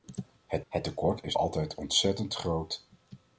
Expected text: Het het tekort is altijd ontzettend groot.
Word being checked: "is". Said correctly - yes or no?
yes